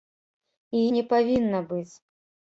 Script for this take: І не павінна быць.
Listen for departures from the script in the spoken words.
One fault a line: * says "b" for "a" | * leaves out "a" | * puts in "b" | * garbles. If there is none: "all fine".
all fine